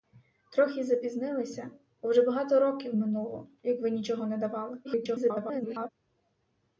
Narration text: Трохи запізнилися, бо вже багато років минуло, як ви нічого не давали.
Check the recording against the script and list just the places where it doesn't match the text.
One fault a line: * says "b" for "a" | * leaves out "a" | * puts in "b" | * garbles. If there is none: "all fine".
* garbles